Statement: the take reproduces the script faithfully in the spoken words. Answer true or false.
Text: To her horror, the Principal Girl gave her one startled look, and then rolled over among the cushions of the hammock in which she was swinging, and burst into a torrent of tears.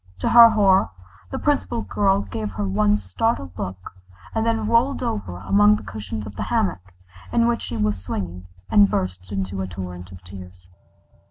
true